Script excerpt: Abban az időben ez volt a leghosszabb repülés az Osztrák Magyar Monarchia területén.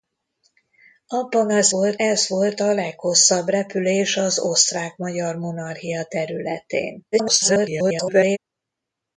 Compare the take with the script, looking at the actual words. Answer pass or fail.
fail